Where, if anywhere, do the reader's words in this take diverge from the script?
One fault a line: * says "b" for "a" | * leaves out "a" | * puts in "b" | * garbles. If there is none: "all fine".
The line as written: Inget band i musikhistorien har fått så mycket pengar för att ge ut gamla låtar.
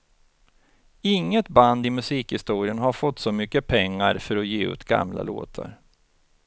all fine